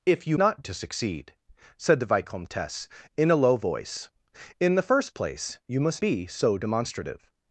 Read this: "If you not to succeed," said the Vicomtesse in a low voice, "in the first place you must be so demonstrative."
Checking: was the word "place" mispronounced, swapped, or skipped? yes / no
no